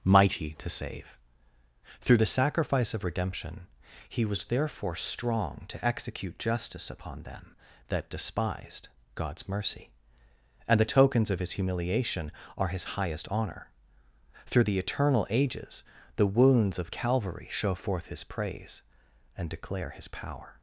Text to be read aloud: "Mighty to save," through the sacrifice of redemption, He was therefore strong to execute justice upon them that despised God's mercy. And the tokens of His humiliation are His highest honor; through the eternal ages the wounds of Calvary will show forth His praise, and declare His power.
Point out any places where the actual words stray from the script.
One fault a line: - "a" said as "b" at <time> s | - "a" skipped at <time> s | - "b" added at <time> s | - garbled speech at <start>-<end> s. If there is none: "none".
- "will" skipped at 17.5 s